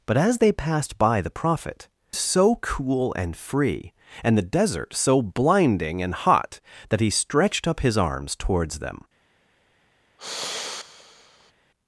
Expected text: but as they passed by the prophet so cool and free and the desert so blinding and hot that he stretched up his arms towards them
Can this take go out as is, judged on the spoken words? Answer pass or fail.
pass